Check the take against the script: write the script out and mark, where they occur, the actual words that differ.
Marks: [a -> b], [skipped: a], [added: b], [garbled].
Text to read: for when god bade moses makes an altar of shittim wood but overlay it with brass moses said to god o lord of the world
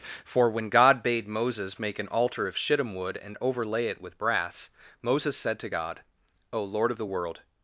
for when god bade moses [makes -> make] an altar of shittim wood [but -> and] overlay it with brass moses said to god o lord of the world